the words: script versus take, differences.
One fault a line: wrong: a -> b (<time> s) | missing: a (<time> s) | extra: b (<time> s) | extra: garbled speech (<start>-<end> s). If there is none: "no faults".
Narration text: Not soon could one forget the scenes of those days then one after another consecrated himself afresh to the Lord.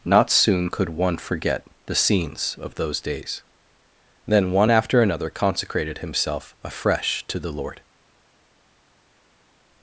no faults